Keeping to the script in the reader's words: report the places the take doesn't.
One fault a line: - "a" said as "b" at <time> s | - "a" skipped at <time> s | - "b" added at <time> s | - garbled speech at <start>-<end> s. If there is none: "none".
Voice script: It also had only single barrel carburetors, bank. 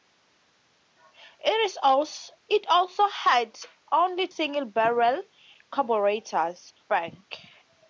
none